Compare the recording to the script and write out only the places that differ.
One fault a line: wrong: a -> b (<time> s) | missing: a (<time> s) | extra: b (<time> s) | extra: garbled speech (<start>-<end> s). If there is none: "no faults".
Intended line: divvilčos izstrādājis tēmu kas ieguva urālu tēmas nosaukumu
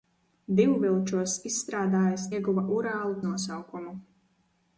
missing: tēmu kas (2.2 s)
missing: tēmas (3.2 s)